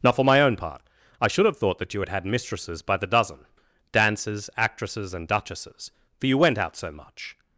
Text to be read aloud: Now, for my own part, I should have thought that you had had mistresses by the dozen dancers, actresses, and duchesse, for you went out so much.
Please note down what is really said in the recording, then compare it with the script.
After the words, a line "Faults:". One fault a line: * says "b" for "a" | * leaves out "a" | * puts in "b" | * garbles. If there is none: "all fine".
Now, for my own part, I should have thought that you had had mistresses by the dozen dancers, actresses, and duchesses, for you went out so much.
Faults:
* says "duchesses" for "duchesse"